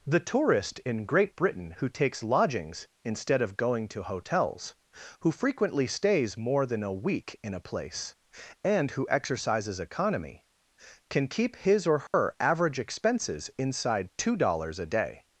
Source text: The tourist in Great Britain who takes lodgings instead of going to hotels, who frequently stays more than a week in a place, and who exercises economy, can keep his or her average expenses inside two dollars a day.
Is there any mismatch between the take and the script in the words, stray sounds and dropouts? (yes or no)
yes